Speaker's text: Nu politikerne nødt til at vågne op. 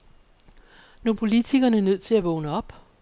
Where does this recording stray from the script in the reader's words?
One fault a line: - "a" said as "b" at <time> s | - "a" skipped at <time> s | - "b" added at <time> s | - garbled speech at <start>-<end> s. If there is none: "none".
none